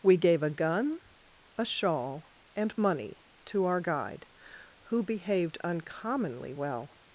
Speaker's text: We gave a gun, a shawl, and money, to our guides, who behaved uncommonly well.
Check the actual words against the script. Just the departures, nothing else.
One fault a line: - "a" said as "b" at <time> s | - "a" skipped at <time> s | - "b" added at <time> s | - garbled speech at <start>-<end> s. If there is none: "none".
- "guides" said as "guide" at 3.8 s